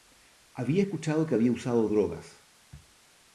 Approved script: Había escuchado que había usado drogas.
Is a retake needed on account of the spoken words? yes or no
no